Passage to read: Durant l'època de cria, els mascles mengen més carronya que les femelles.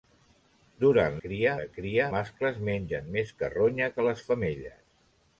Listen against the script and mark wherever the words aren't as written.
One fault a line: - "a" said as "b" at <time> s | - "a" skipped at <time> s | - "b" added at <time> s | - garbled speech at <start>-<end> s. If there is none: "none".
- "l'època" said as "cria" at 1.2 s
- "els" skipped at 2.1 s